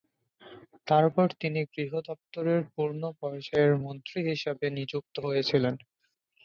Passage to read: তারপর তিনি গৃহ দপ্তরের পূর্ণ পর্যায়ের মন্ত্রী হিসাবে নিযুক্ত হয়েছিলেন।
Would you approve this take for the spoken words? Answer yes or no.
yes